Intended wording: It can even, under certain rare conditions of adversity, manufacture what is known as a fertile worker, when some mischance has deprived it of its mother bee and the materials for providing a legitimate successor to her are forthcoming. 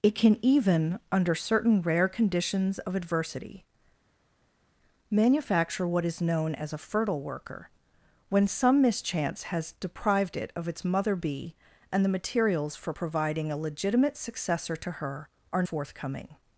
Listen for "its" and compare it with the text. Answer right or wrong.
right